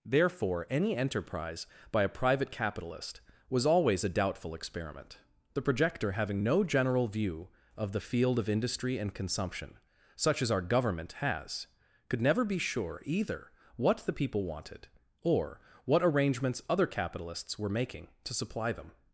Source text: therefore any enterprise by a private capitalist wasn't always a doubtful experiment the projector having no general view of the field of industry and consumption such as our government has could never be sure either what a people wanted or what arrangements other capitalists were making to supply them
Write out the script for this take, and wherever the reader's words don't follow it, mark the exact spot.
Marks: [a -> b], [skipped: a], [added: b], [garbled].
therefore any enterprise by a private capitalist [wasn't -> was] always a doubtful experiment the projector having no general view of the field of industry and consumption such as our government has could never be sure either what [a -> the] people wanted or what arrangements other capitalists were making to supply them